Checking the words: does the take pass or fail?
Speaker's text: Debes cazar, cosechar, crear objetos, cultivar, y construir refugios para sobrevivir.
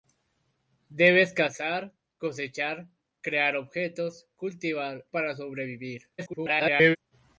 fail